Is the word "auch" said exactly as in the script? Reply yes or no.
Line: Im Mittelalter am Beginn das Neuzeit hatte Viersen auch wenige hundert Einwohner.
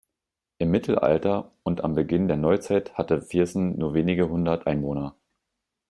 no